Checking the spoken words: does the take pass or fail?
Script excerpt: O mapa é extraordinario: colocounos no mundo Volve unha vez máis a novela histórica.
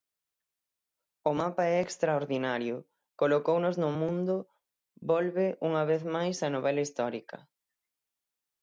pass